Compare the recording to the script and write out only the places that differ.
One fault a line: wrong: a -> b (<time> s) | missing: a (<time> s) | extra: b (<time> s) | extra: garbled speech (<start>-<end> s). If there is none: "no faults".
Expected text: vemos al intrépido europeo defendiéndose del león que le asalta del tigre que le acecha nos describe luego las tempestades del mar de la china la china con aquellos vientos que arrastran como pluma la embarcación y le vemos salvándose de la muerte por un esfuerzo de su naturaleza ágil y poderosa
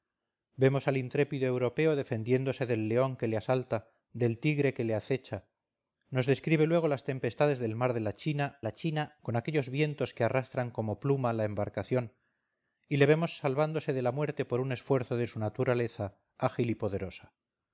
no faults